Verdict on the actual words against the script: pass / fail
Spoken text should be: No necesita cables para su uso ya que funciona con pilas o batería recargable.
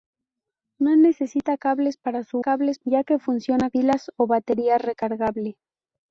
fail